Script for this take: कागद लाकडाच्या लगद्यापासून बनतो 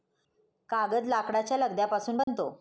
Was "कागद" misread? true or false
false